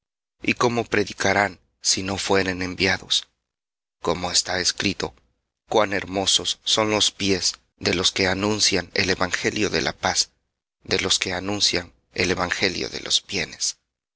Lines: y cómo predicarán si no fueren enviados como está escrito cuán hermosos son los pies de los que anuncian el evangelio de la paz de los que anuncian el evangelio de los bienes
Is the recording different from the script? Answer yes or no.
no